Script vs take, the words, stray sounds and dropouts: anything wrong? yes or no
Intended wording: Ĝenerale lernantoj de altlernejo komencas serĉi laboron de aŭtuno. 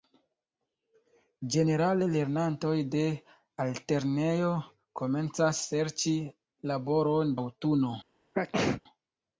yes